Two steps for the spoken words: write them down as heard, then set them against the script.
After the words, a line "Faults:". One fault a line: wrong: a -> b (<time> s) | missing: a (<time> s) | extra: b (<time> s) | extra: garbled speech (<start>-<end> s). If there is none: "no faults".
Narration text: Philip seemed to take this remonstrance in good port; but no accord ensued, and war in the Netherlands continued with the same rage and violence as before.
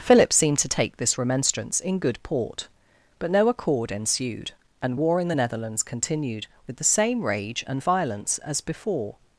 Philip seemed to take this remonstrance in good port; but no accord ensued, and war in the Netherlands continued with the same rage and violence as before.
Faults:
no faults